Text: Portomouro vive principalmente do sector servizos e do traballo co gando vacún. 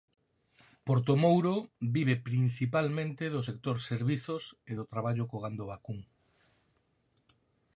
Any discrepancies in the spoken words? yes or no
no